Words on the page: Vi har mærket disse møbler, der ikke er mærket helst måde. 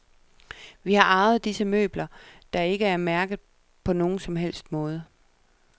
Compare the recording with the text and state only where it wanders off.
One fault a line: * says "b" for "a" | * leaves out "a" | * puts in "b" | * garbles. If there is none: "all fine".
* says "arvet" for "mærket"
* puts in "på nogen som"